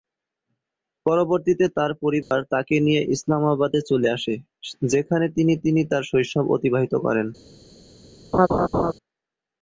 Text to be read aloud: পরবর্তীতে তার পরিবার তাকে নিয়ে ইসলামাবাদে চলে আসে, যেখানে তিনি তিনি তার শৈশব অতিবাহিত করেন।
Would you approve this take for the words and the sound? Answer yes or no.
no